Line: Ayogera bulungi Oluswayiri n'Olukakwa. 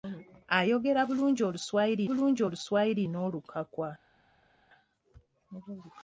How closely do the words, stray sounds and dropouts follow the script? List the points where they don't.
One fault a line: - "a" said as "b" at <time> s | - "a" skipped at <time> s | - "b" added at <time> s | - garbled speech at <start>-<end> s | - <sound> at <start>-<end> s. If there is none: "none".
- "bulungi Oluswayiri" added at 2.1 s